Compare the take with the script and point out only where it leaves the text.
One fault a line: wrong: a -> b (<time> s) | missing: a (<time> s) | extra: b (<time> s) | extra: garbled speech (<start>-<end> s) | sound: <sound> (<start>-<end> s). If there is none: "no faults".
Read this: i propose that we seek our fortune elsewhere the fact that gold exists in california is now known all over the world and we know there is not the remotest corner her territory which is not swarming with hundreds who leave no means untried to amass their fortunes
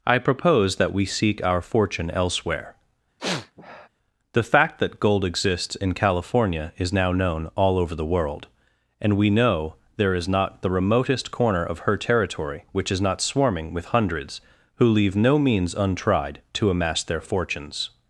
sound: sniff (3.2-3.9 s)
extra: of (11.6 s)